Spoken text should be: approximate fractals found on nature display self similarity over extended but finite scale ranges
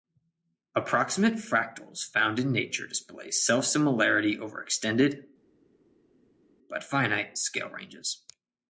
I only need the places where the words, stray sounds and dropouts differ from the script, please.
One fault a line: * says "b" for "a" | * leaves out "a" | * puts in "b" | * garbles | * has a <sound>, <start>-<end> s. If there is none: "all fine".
* says "in" for "on"